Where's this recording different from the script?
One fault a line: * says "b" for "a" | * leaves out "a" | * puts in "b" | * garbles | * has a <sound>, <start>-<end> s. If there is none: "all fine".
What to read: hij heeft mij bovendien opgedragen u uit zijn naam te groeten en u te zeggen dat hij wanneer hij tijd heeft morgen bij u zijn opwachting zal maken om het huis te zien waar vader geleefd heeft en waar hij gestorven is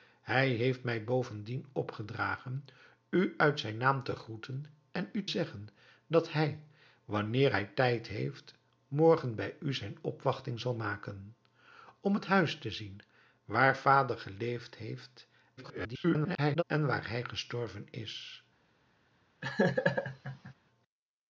* leaves out "te"
* garbles
* has a laugh, 19.4-20.5 s